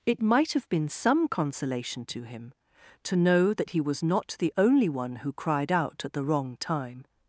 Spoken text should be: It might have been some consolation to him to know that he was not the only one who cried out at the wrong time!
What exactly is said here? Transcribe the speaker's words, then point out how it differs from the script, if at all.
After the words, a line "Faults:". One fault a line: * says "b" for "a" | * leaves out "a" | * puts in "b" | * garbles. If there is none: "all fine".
It might have been some consolation to him to know that he was not the only one who cried out at the wrong time!
Faults:
all fine